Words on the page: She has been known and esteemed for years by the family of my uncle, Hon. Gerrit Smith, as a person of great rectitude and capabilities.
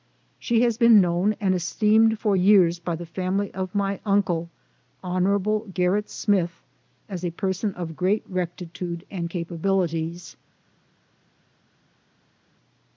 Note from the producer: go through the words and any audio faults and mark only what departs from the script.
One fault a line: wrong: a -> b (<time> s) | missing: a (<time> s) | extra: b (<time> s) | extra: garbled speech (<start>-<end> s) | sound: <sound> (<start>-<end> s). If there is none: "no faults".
no faults